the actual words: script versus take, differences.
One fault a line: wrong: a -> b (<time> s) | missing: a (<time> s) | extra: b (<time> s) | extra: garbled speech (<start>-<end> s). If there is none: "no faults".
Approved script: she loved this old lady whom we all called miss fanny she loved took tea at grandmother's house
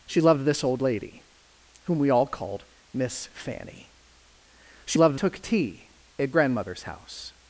no faults